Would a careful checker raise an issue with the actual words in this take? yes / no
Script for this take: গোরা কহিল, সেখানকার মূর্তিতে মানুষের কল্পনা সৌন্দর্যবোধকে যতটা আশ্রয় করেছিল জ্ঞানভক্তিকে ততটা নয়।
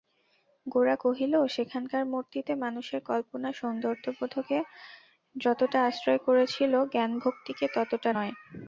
no